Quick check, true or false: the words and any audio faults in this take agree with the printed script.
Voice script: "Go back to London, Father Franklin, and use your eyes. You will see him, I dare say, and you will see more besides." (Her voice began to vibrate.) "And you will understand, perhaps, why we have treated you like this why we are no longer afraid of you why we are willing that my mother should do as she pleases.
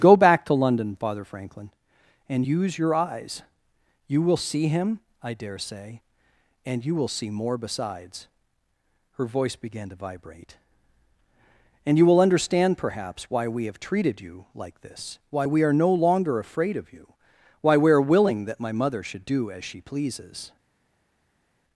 true